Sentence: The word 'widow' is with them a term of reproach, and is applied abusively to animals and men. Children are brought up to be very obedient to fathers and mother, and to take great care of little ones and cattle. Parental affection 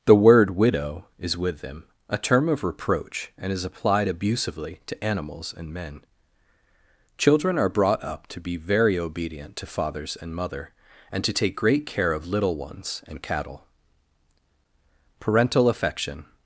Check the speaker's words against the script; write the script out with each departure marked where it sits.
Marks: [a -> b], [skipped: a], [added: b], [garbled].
The word 'widow' is with them a term of reproach, and is applied abusively to animals and men. Children are brought up to be very obedient to fathers and mother, and to take great care of little ones and cattle. Parental affection